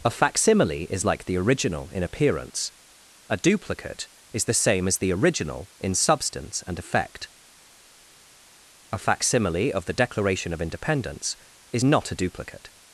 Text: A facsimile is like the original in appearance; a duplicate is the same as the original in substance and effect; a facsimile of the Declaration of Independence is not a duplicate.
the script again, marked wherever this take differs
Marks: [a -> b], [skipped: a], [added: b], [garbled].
A facsimile is like the original in appearance; a duplicate is the same as the original in substance and effect; a facsimile of the Declaration of Independence is not a duplicate.